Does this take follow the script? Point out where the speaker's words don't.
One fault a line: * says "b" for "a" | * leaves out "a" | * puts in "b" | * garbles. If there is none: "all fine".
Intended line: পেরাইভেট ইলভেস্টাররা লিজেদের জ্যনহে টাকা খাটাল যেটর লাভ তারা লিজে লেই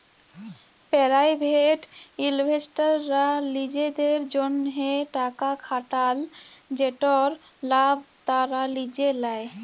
all fine